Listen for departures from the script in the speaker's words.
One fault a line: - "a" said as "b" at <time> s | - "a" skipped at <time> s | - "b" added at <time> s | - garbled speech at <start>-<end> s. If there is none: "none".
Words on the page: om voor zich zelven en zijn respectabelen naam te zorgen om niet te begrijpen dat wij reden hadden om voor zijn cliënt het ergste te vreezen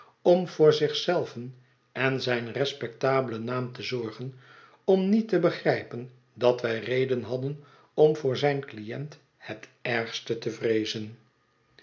none